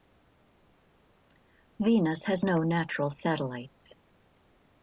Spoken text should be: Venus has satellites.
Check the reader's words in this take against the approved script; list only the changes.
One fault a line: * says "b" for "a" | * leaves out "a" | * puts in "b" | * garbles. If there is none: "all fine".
* puts in "no natural"